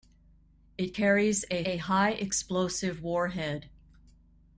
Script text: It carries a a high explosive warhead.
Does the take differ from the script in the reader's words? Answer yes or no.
no